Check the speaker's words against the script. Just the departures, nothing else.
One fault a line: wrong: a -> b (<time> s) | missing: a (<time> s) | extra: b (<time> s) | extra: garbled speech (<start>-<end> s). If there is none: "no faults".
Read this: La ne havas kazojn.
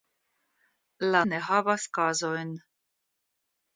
no faults